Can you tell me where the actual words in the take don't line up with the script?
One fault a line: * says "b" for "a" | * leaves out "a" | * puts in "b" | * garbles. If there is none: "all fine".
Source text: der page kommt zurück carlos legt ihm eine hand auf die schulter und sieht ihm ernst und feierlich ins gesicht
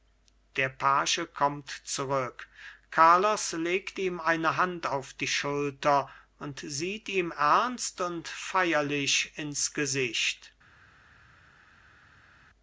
all fine